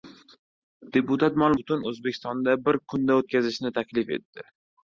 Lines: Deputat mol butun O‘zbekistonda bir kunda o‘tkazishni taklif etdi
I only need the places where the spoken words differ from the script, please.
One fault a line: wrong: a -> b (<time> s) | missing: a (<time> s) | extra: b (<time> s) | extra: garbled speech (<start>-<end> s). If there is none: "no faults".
no faults